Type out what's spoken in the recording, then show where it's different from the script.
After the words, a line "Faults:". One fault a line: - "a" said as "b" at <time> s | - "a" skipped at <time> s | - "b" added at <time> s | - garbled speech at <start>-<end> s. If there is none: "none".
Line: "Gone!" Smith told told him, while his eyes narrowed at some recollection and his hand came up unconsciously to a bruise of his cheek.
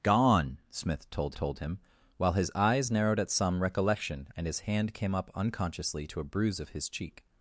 "Gone!" Smith told told him, while his eyes narrowed at some recollection and his hand came up unconsciously to a bruise of his cheek.
Faults:
none